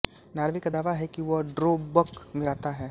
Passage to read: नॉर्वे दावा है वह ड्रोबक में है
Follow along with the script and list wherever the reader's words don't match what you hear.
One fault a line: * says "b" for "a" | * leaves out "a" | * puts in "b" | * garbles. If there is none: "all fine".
* puts in "का"
* puts in "कि"
* puts in "रहता"